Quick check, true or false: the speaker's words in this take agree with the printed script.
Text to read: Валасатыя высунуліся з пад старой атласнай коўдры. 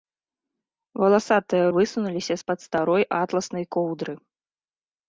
true